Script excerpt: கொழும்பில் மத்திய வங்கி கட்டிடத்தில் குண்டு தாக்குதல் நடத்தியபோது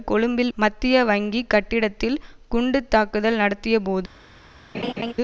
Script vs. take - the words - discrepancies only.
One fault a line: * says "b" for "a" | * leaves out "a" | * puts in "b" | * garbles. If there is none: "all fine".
all fine